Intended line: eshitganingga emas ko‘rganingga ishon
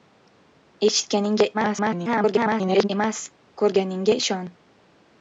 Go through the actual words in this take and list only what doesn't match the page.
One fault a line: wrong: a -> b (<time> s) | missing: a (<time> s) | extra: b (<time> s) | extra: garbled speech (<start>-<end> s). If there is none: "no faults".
extra: garbled speech (1.5-2.9 s)